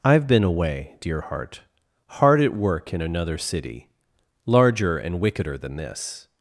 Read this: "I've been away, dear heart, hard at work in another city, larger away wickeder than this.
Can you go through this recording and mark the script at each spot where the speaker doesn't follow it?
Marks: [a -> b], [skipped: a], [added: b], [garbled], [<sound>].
"I've been away, dear heart, hard at work in another city, larger [away -> and] wickeder than this.